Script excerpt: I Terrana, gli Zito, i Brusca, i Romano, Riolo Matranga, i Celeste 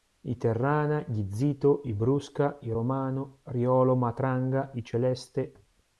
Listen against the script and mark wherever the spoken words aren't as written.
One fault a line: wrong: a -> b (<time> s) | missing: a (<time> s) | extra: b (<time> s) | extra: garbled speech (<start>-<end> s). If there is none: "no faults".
no faults